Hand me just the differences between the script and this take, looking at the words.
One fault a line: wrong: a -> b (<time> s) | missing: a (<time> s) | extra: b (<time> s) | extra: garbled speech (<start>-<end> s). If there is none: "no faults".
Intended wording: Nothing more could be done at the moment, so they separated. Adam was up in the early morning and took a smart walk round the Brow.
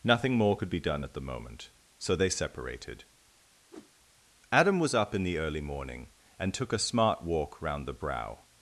no faults